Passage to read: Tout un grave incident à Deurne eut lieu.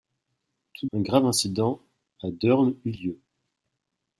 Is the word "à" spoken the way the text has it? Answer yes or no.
yes